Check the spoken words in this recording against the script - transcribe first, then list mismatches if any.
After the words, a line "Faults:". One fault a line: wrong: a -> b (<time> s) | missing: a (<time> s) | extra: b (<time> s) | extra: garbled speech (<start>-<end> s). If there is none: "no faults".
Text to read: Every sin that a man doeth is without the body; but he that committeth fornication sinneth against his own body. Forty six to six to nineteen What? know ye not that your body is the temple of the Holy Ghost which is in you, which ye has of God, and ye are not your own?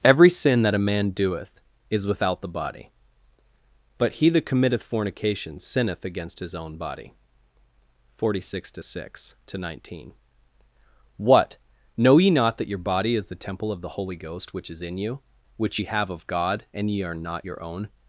Every sin that a man doeth is without the body; but he that committeth fornication sinneth against his own body. Forty six to six to nineteen What? know ye not that your body is the temple of the Holy Ghost which is in you, which ye have of God, and ye are not your own?
Faults:
wrong: has -> have (15.9 s)